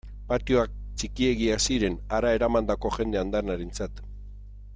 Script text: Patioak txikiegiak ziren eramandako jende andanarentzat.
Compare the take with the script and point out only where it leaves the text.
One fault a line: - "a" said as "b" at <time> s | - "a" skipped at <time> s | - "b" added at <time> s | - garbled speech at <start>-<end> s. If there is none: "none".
- "hara" added at 2.2 s